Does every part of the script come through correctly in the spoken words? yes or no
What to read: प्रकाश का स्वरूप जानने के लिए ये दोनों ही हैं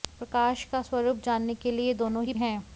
yes